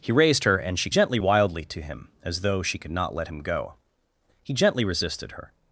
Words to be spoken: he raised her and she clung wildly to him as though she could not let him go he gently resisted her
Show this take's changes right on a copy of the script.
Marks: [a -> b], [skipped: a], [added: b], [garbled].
he raised her and she [clung -> gently] wildly to him as though she could not let him go he gently resisted her